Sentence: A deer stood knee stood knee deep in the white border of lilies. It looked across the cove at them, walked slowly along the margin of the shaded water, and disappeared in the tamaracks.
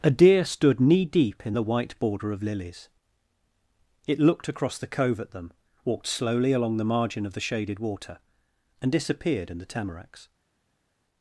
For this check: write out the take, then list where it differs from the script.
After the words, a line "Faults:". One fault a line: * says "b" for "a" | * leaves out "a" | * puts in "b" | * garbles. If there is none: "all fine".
A deer stood knee deep in the white border of lilies. It looked across the cove at them, walked slowly along the margin of the shaded water, and disappeared in the tamaracks.
Faults:
* leaves out "stood knee"